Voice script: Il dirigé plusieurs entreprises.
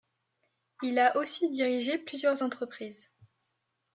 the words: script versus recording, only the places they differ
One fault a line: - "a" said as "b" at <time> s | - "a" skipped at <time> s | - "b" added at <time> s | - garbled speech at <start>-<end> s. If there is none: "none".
- "a aussi" added at 1.0 s